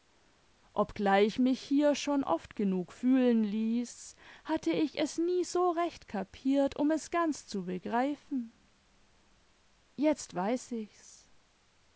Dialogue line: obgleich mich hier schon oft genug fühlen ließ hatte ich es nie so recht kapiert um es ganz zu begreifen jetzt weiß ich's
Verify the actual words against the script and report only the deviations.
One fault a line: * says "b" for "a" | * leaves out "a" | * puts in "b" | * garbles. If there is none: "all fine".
all fine